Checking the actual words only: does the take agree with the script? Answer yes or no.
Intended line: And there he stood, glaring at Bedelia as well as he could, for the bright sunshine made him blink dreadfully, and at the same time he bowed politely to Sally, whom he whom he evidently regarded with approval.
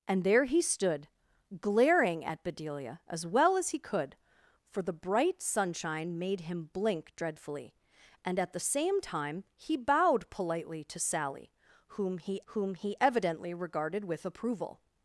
yes